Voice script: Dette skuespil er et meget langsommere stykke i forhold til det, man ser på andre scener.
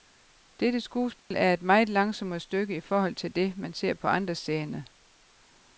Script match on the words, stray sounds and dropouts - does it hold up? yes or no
no